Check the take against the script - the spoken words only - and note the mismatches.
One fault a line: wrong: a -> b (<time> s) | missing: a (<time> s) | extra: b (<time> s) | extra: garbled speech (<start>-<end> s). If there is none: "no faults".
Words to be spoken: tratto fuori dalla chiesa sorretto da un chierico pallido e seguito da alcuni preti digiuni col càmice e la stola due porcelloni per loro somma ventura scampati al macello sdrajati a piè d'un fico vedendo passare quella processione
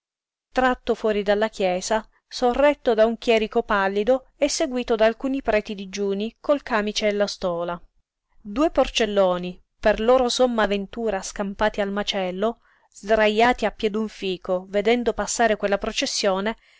no faults